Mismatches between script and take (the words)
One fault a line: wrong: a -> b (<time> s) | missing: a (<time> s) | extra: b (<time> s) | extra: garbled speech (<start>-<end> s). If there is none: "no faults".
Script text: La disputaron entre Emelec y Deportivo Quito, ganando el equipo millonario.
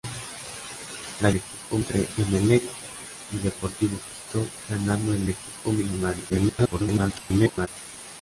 wrong: disputaron -> equipo (1.3 s)
extra: el (5.2 s)
extra: garbled speech (6.3-7.7 s)